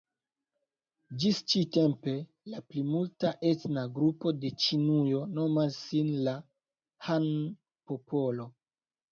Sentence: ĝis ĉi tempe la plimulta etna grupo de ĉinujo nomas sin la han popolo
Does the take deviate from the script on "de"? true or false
false